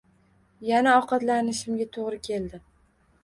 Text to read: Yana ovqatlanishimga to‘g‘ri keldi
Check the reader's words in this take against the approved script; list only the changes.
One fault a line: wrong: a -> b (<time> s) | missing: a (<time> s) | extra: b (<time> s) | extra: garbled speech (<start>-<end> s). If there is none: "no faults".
no faults